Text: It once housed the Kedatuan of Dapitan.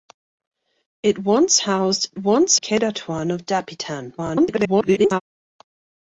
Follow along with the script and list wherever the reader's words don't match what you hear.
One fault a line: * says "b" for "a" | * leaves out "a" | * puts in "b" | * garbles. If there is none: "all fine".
* says "once" for "the"
* garbles